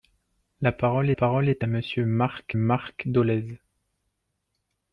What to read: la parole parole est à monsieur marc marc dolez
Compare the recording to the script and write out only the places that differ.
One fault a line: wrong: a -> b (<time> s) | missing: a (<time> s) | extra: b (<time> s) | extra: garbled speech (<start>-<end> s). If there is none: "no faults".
no faults